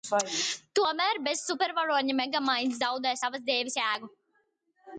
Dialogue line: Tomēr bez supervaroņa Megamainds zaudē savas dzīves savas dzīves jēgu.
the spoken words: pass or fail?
fail